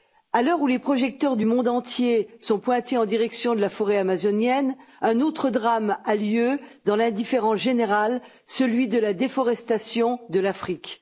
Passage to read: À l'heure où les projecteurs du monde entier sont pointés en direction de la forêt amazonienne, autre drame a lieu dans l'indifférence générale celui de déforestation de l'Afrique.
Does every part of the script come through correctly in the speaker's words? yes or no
no